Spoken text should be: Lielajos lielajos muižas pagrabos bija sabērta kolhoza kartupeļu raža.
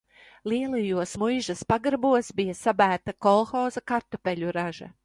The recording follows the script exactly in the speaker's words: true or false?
false